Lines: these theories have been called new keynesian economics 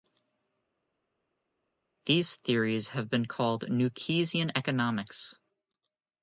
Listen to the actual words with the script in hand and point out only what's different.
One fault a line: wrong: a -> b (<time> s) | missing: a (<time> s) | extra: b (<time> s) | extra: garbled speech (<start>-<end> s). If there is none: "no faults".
no faults